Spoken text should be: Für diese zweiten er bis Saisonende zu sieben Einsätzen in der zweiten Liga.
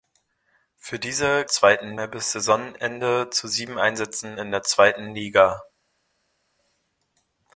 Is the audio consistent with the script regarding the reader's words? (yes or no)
yes